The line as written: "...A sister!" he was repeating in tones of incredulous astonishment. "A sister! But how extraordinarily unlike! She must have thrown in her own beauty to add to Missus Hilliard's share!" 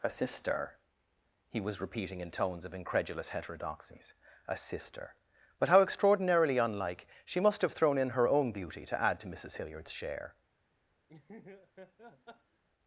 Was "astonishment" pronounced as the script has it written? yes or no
no